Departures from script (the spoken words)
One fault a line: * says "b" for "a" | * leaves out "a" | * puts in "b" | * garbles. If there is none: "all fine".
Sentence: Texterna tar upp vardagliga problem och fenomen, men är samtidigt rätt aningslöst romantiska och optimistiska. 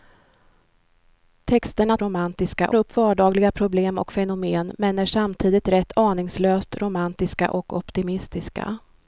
* says "romantiska" for "tar"